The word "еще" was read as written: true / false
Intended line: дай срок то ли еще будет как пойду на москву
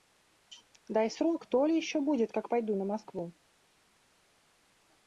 true